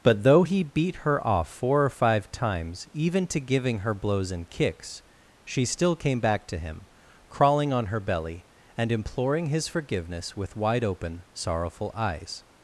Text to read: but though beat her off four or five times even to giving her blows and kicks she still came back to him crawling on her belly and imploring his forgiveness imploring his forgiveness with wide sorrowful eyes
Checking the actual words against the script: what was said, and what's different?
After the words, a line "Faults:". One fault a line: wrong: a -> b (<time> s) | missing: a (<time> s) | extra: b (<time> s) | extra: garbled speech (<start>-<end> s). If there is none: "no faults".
but though he beat her off four or five times even to giving her blows and kicks she still came back to him crawling on her belly and imploring his forgiveness with wide open sorrowful eyes
Faults:
extra: he (0.4 s)
missing: imploring his forgiveness (10.4 s)
extra: open (10.8 s)